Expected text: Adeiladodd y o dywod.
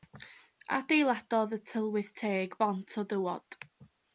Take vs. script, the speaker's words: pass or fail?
fail